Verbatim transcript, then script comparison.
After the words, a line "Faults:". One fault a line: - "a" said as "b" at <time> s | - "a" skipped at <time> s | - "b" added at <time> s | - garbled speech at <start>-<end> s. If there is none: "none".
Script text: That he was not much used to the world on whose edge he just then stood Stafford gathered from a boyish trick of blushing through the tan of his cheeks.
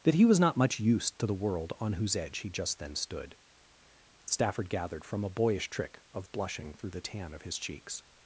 That he was not much used to the world on whose edge he just then stood Stafford gathered from a boyish trick of blushing through the tan of his cheeks.
Faults:
none